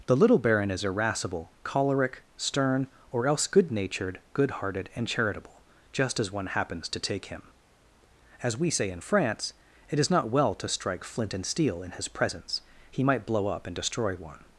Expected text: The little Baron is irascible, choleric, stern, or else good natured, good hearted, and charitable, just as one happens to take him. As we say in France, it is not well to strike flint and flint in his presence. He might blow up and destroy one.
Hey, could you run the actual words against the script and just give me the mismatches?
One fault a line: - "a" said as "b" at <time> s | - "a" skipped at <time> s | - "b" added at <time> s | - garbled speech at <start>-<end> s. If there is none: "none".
- "flint" said as "steel" at 11.4 s